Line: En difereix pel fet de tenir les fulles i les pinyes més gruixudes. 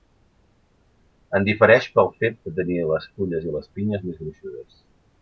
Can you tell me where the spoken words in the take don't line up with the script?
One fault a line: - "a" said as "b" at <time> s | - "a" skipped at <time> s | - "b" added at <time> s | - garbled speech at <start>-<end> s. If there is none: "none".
none